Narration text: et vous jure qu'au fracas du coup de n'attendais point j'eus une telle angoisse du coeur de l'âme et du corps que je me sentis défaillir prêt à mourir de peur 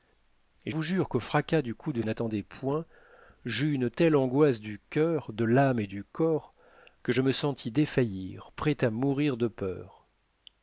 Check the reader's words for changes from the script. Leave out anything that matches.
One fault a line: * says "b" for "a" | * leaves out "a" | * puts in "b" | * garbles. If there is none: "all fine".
all fine